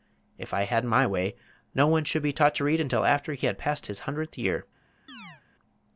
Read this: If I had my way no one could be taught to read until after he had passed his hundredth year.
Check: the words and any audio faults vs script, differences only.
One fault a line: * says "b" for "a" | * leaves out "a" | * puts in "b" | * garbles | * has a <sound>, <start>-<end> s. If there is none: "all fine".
* says "should" for "could"
* has a chirp, 5.1-5.4 s